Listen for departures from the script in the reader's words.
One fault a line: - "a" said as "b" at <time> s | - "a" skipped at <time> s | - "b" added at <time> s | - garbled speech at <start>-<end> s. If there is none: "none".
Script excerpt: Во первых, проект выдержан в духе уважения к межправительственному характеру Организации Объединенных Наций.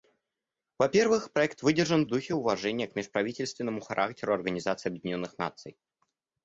none